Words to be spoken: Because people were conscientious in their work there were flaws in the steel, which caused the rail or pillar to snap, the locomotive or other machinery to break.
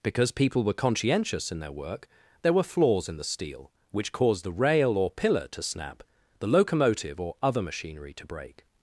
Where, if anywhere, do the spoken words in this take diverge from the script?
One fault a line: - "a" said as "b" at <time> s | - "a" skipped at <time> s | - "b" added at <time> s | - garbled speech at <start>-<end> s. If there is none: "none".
none